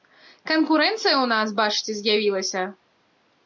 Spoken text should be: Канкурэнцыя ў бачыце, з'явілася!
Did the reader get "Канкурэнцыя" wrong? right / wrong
right